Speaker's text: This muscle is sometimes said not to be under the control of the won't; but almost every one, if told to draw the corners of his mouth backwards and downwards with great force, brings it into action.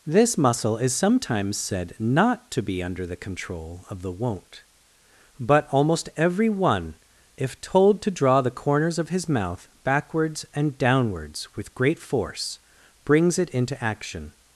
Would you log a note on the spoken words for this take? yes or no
no